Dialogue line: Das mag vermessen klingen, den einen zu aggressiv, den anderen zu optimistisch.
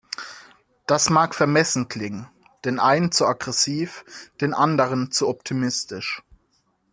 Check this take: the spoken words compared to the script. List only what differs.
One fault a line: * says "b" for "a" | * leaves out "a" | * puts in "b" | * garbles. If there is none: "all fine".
all fine